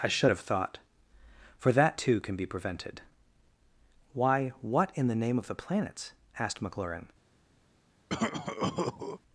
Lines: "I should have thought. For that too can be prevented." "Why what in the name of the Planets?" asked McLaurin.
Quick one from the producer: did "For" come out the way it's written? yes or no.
yes